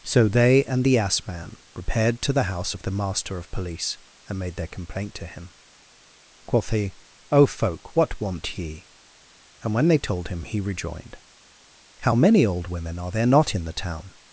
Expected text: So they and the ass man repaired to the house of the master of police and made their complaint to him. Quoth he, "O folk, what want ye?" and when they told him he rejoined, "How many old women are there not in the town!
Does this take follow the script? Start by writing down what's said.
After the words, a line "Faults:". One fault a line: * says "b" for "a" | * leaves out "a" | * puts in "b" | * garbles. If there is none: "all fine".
So they and the ass man repaired to the house of the master of police and made their complaint to him. Quoth he, "O folk, what want ye?" and when they told him he rejoined, "How many old women are there not in the town!
Faults:
all fine